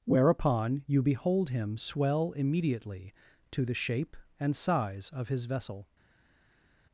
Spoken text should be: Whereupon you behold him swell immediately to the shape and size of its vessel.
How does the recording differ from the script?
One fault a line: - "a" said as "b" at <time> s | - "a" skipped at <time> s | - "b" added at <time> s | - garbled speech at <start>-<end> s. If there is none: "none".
- "its" said as "his" at 5.3 s